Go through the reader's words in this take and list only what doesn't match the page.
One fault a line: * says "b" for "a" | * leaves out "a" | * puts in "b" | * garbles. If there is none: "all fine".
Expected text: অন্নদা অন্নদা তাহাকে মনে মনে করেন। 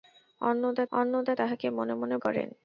all fine